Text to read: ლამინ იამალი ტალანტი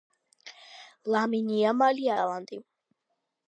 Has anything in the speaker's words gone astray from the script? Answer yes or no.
no